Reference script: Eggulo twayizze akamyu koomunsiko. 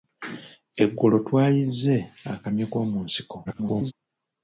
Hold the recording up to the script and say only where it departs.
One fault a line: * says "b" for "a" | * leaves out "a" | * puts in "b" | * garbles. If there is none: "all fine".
* garbles